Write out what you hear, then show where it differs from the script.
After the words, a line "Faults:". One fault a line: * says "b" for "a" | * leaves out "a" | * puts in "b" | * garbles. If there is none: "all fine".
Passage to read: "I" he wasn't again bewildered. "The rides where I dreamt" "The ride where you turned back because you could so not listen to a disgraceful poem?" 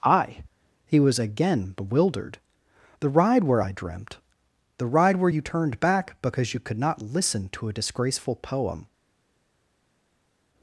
"I" he was again bewildered. "The ride where I dreamt" "The ride where you turned back because you could not listen to a disgraceful poem?"
Faults:
* says "was" for "wasn't"
* says "ride" for "rides"
* leaves out "so"